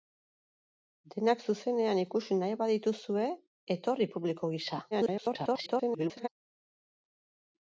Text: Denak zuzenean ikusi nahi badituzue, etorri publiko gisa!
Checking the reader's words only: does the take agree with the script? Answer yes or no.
no